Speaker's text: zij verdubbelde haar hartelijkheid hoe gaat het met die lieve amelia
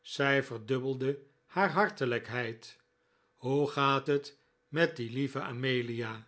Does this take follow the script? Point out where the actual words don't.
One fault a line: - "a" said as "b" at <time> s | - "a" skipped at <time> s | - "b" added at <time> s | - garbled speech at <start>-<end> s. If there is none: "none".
none